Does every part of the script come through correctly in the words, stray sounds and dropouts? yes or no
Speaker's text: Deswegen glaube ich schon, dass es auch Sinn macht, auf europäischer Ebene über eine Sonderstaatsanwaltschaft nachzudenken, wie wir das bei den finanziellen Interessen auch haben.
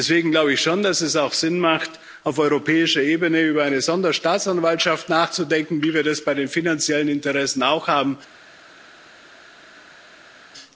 yes